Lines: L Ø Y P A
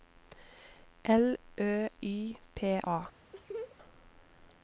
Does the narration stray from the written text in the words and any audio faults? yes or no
yes